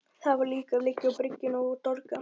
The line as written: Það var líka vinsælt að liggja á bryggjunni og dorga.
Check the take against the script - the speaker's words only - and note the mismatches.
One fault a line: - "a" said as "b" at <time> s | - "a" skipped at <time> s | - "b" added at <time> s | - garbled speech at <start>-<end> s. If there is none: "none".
- "vinsælt" skipped at 0.8 s